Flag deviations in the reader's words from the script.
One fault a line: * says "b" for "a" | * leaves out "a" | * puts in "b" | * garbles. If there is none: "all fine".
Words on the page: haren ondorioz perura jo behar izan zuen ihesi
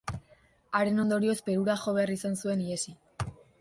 all fine